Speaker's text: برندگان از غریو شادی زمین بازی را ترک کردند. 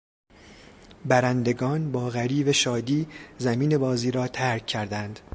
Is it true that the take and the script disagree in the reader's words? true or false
true